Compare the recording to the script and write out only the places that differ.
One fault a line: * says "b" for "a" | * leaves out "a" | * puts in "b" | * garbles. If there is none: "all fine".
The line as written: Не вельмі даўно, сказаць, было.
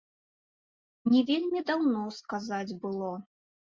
all fine